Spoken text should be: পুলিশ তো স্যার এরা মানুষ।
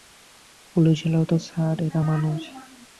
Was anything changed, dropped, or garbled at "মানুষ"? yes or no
no